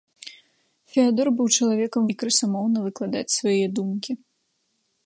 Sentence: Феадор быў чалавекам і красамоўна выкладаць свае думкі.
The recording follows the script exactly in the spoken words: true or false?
true